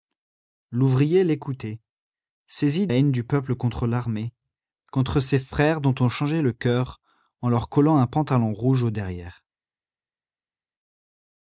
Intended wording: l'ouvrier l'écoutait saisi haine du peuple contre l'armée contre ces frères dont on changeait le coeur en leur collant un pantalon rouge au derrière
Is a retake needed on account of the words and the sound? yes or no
no